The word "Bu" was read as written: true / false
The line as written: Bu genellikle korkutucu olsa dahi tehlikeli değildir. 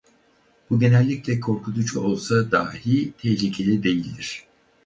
true